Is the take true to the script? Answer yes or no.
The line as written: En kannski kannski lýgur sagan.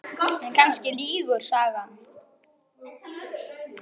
no